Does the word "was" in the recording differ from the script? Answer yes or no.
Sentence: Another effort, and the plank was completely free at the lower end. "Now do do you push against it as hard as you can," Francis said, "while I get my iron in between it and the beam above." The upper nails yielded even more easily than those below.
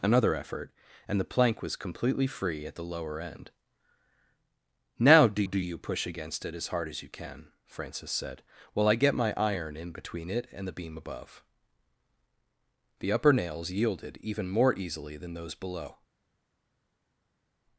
no